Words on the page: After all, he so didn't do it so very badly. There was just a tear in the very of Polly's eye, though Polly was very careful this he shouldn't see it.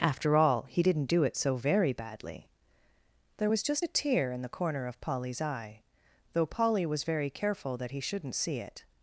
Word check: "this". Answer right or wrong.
wrong